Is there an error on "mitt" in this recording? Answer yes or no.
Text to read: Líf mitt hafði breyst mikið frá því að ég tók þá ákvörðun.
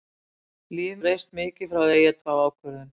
yes